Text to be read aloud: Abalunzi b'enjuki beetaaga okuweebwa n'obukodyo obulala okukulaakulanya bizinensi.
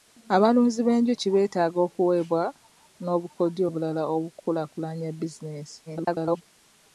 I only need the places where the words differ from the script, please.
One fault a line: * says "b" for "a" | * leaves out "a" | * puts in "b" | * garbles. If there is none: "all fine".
* garbles